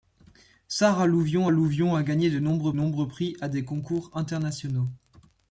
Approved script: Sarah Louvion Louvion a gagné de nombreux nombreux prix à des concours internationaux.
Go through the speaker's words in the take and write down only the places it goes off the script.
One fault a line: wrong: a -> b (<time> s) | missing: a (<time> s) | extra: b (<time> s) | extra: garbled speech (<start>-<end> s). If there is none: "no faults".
no faults